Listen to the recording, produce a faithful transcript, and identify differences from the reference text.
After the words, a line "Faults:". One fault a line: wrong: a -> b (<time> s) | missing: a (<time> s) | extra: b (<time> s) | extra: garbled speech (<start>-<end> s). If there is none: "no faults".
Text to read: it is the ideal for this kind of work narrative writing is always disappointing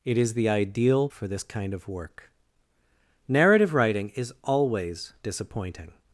it is the ideal for this kind of work narrative writing is always disappointing
Faults:
no faults